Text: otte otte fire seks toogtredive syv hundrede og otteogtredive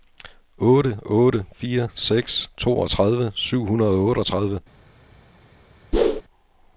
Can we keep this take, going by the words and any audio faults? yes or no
no